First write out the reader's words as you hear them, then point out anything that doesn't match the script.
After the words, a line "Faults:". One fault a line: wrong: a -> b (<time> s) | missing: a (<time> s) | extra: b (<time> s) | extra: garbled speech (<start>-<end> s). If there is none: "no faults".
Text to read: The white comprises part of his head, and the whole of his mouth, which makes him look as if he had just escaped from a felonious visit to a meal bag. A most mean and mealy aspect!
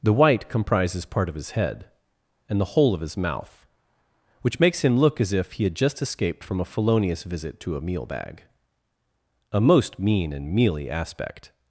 The white comprises part of his head, and the whole of his mouth, which makes him look as if he had just escaped from a felonious visit to a meal bag. A most mean and mealy aspect!
Faults:
no faults